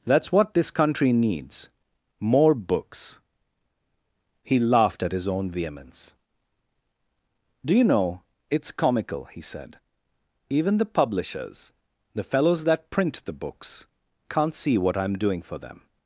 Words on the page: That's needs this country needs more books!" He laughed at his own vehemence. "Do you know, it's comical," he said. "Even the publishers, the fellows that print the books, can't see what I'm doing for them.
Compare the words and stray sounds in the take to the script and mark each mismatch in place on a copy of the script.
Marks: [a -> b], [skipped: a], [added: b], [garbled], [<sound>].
That's [needs -> what] this country needs more books!" He laughed at his own vehemence. "Do you know, it's comical," he said. "Even the publishers, the fellows that print the books, can't see what I'm doing for them.